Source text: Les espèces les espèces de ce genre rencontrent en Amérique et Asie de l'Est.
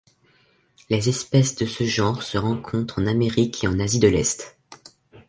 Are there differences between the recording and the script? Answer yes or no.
yes